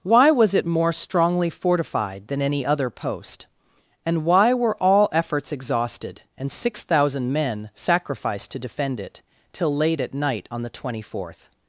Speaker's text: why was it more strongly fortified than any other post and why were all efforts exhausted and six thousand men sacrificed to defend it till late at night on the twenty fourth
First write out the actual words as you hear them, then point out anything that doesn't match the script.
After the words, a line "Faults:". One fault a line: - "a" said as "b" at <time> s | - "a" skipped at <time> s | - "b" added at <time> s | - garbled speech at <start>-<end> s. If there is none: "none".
why was it more strongly fortified than any other post and why were all efforts exhausted and six thousand men sacrificed to defend it till late at night on the twenty fourth
Faults:
none